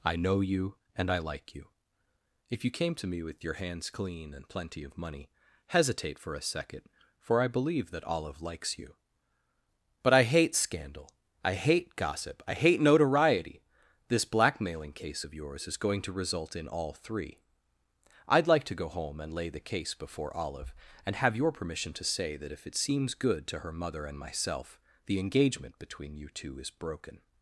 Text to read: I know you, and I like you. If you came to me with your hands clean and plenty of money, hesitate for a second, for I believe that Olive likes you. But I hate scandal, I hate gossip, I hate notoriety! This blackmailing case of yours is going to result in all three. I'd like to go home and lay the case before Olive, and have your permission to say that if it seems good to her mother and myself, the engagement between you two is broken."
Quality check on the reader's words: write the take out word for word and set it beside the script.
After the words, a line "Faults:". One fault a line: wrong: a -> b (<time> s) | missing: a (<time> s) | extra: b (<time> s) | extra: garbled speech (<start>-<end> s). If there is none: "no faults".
I know you, and I like you. If you came to me with your hands clean and plenty of money, hesitate for a second, for I believe that Olive likes you. But I hate scandal, I hate gossip, I hate notoriety! This blackmailing case of yours is going to result in all three. I'd like to go home and lay the case before Olive, and have your permission to say that if it seems good to her mother and myself, the engagement between you two is broken."
Faults:
no faults